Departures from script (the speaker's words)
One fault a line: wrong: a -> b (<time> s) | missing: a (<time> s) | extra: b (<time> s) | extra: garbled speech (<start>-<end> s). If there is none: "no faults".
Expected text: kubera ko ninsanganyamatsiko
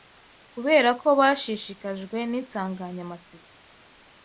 extra: bashishikajwe (1.2 s)